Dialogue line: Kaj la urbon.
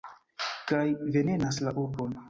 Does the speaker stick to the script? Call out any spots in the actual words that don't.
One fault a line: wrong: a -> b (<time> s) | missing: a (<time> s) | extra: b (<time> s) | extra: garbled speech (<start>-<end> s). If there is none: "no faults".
extra: venenas (1.2 s)